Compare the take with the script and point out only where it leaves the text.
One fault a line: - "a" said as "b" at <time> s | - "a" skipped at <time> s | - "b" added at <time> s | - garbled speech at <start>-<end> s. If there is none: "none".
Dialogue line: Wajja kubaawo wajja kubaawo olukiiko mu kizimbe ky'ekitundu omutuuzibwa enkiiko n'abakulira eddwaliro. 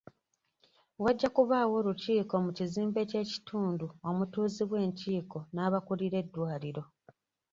- "wajja kubaawo" skipped at 1.7 s